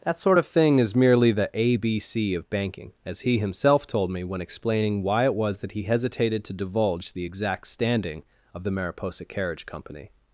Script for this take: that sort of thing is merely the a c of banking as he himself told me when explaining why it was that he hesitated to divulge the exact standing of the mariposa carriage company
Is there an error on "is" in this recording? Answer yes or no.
no